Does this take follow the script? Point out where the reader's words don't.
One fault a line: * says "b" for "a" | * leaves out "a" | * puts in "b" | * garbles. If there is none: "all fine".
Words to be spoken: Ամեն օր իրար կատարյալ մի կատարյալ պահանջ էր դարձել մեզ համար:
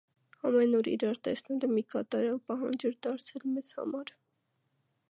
* says "տեսնելը" for "կատարյալ"